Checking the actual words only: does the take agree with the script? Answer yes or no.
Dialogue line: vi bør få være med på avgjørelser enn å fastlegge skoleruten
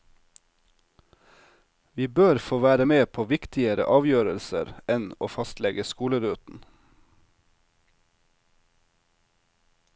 no